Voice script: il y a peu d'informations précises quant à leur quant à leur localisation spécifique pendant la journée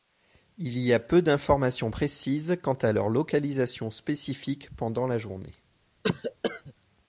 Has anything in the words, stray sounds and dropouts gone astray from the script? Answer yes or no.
yes